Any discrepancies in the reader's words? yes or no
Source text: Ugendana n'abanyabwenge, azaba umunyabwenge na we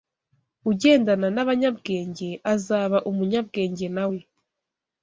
no